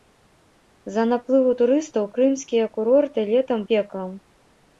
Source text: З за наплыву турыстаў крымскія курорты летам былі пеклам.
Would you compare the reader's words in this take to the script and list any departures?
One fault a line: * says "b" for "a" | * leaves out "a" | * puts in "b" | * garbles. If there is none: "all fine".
* leaves out "былі"